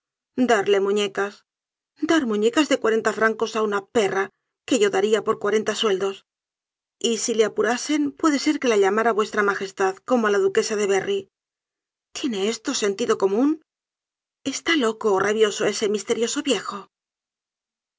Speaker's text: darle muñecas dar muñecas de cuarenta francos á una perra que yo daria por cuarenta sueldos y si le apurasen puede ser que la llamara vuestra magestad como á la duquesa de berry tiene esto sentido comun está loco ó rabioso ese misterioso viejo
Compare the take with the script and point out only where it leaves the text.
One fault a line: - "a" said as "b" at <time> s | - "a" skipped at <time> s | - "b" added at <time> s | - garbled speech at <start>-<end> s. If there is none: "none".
none